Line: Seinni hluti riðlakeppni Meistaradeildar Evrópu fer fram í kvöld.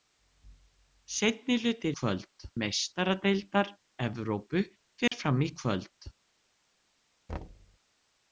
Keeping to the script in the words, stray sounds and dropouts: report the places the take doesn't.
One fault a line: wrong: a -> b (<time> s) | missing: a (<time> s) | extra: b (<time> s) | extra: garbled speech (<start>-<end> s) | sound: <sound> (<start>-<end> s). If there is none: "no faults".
wrong: riðlakeppni -> kvöld (2.0 s)
sound: dropout (5.1-5.1 s)
sound: thud (7.3-7.8 s)